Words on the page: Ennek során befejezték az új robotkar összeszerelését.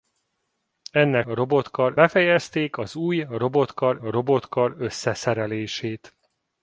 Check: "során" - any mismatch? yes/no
yes